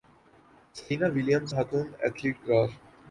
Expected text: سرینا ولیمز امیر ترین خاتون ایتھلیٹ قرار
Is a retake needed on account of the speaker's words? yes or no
yes